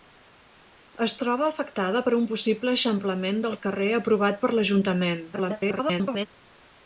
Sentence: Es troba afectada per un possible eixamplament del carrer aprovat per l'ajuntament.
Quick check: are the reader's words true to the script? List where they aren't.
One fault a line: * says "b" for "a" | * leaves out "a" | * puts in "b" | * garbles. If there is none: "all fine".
* garbles